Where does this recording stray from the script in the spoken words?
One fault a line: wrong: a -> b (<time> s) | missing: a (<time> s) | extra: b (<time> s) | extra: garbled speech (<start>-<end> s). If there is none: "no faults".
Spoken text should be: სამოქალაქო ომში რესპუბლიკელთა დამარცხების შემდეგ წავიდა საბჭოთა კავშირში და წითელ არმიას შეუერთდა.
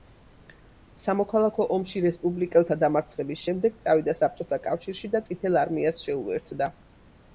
no faults